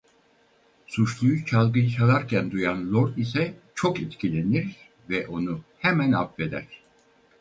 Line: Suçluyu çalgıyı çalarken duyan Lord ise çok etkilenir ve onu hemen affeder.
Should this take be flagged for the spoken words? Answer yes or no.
no